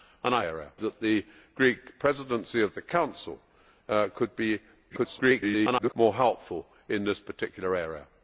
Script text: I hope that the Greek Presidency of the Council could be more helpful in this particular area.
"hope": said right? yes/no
no